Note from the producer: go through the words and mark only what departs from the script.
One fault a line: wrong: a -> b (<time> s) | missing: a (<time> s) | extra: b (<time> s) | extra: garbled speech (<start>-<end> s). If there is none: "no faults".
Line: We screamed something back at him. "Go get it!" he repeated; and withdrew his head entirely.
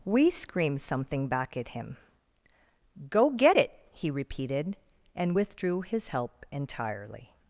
wrong: head -> help (6.1 s)